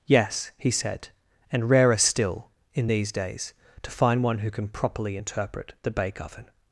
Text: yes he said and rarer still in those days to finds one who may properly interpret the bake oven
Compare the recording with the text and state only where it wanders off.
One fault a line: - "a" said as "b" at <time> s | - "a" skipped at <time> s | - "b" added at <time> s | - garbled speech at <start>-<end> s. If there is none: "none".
- "those" said as "these" at 2.9 s
- "finds" said as "find" at 3.9 s
- "may" said as "can" at 4.5 s